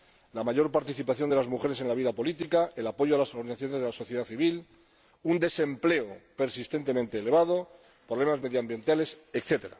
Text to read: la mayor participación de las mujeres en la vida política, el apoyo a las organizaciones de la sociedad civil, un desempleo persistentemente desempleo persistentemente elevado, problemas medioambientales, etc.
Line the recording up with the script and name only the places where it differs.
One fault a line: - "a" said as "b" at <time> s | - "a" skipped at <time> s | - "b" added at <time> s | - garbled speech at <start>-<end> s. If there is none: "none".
- "desempleo persistentemente" skipped at 7.2 s